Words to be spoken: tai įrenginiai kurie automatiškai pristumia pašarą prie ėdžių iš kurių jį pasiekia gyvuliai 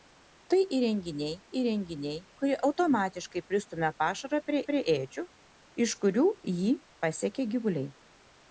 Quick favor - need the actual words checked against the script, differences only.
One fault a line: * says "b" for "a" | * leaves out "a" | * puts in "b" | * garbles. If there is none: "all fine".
* puts in "įrenginiai"
* puts in "prie"